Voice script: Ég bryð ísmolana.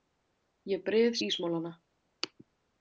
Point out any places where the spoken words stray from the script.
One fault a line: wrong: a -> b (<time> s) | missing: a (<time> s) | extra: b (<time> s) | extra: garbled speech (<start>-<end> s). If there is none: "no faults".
no faults